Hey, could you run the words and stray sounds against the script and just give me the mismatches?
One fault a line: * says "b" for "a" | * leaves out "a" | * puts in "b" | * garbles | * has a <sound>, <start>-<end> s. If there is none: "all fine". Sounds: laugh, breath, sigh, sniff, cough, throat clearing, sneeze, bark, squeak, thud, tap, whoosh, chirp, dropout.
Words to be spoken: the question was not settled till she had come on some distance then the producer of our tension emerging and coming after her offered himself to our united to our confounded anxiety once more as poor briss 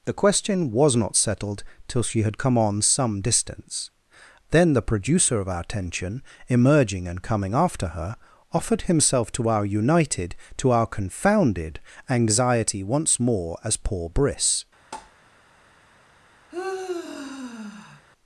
* has a tap, 14.9-15.1 s
* has a sigh, 16.5-18.1 s